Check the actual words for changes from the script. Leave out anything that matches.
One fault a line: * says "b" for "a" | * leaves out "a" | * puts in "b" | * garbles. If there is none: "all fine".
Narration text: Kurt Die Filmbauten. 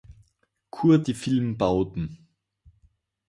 all fine